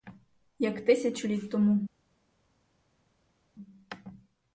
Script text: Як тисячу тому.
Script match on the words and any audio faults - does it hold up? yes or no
no